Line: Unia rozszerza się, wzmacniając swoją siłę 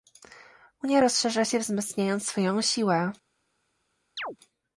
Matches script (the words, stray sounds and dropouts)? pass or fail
fail